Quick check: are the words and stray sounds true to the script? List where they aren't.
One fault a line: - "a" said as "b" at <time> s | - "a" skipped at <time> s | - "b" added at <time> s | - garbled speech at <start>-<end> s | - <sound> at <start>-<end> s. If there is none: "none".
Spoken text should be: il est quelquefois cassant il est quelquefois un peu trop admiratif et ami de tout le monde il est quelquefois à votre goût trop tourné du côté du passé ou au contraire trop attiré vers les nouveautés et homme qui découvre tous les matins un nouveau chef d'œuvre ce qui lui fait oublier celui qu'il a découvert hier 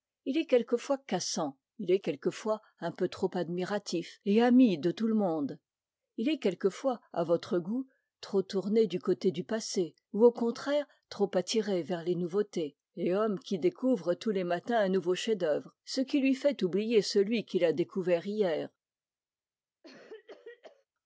- cough at 19.8-20.9 s